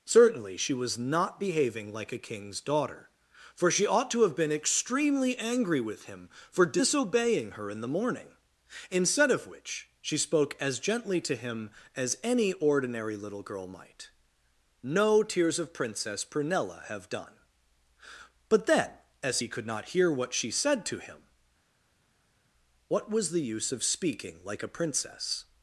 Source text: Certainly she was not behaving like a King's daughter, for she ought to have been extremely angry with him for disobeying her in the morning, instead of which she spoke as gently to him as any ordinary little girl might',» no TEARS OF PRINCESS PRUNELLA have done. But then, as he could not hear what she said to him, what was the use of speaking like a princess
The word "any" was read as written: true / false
true